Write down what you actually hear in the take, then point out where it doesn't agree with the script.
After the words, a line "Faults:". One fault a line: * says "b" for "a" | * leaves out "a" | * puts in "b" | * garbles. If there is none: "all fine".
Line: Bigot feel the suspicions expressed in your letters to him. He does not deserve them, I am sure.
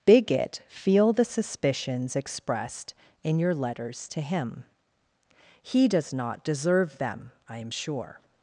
Bigot feel the suspicions expressed in your letters to him. He does not deserve them, I am sure.
Faults:
all fine